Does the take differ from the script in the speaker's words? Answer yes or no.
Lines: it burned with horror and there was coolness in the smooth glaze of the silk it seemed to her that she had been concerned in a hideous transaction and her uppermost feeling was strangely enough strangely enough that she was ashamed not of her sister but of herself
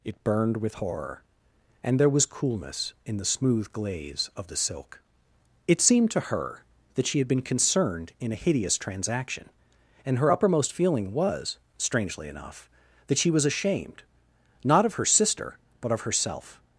yes